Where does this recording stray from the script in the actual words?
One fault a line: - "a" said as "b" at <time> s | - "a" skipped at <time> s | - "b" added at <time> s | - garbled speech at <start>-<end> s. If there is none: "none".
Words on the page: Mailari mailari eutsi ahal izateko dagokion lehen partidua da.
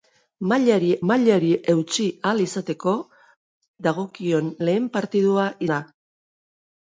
none